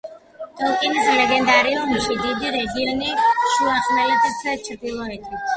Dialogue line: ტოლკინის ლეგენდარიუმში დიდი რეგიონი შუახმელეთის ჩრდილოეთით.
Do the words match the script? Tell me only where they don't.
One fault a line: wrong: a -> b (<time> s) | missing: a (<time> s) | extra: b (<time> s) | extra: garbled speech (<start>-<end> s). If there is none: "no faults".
no faults